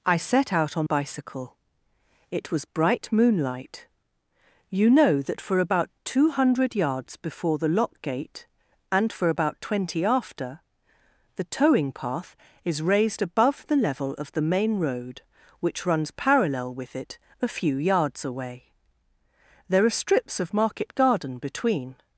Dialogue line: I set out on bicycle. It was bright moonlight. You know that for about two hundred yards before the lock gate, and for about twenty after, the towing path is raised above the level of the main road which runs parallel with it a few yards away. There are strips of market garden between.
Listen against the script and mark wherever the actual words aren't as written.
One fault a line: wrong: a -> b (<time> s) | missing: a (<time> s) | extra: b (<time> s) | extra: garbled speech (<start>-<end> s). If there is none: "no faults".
no faults